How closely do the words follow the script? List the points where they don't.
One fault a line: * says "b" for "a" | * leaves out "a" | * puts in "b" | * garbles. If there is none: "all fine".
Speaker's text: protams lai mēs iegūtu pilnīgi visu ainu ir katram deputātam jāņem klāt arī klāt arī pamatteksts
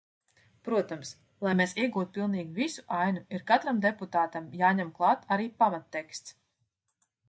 * leaves out "klāt arī"